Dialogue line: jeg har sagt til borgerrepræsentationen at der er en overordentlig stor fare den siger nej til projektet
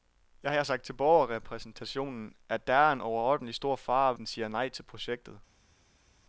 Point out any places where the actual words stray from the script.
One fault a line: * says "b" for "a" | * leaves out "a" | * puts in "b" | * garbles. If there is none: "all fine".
all fine